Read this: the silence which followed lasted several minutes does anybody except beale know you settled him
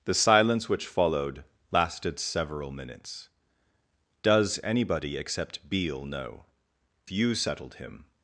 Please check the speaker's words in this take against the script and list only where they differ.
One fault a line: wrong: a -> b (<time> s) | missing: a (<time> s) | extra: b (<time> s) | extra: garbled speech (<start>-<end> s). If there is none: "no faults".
no faults